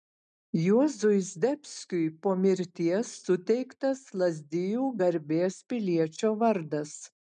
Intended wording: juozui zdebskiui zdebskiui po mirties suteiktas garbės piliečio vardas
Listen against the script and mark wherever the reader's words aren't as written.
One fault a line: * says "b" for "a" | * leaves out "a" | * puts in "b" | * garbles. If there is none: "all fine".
* leaves out "zdebskiui"
* puts in "lazdijų"